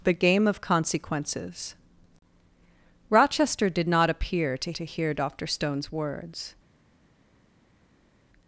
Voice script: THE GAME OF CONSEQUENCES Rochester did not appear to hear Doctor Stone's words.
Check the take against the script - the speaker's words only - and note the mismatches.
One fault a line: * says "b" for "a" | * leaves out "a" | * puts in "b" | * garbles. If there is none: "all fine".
* puts in "to"